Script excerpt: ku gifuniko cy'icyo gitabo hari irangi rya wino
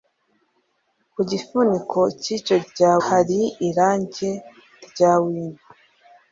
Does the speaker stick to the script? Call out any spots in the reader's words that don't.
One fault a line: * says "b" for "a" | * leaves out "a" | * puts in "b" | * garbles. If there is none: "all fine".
* says "rya" for "gitabo"